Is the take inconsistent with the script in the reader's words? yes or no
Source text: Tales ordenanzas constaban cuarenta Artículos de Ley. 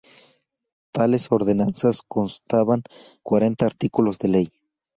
no